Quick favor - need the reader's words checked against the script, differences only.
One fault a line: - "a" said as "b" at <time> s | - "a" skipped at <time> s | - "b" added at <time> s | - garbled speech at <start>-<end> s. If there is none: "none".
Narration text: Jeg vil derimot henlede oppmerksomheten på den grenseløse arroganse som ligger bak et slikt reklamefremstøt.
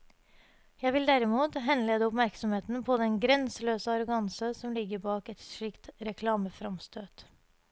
none